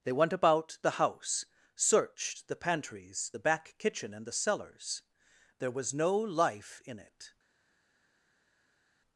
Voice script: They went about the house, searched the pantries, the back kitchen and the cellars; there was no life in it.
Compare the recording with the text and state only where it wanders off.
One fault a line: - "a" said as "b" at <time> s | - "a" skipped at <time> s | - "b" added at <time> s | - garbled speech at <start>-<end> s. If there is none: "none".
none